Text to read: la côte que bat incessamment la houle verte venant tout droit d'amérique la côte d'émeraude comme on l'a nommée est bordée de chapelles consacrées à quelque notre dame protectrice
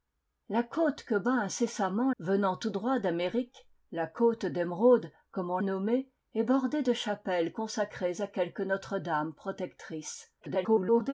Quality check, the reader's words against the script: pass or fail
fail